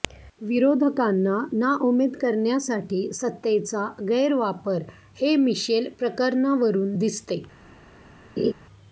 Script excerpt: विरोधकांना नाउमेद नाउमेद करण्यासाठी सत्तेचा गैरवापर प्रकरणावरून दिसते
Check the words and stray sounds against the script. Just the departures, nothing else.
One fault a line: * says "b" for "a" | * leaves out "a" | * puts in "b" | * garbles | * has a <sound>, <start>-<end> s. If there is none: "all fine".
* leaves out "नाउमेद"
* puts in "हे मिशेल"
* has a laugh, 8.4-8.5 s